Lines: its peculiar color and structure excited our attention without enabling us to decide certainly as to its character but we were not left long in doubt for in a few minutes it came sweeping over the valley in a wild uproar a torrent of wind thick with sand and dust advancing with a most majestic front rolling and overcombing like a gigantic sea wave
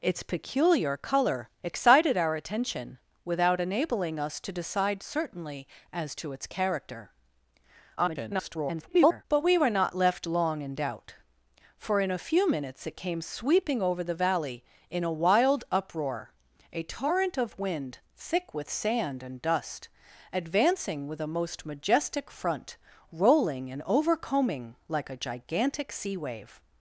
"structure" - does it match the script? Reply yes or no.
no